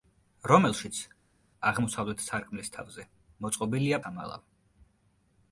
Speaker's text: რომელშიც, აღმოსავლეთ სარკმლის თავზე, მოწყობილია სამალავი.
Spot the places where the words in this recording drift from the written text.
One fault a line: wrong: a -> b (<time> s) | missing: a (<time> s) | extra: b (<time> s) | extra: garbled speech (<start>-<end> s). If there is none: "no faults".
no faults